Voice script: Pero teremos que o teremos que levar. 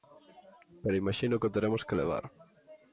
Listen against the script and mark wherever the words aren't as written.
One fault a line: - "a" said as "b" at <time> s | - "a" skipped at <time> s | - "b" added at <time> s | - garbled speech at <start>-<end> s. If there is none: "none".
- "teremos" said as "imaxino" at 1.0 s